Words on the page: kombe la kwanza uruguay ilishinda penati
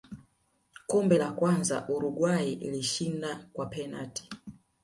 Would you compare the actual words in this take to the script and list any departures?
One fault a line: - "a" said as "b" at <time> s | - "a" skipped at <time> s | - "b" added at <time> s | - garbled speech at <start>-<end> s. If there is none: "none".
- "kwa" added at 3.5 s